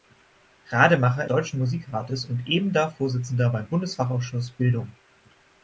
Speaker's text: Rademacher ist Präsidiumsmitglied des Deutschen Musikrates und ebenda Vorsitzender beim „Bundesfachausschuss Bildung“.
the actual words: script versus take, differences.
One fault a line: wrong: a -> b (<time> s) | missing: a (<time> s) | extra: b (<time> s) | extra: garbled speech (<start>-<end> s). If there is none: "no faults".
missing: ist Präsidiumsmitglied des (1.3 s)